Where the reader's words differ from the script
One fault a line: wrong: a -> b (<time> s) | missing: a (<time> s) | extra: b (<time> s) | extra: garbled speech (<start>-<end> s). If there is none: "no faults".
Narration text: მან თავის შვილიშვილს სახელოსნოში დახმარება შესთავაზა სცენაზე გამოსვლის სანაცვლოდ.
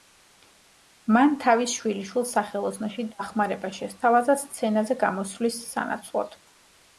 no faults